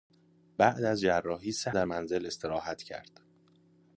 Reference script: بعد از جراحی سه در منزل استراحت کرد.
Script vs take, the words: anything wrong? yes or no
no